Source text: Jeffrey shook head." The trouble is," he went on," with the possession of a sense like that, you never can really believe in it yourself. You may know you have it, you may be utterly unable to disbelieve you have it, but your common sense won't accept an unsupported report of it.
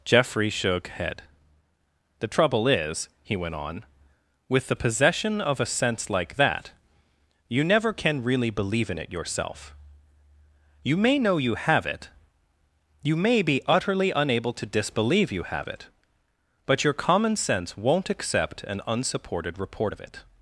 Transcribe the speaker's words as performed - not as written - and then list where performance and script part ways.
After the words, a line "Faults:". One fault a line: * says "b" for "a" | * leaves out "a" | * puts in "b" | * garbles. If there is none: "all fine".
Jeffrey shook head." The trouble is," he went on," with the possession of a sense like that, you never can really believe in it yourself. You may know you have it, you may be utterly unable to disbelieve you have it, but your common sense won't accept an unsupported report of it.
Faults:
all fine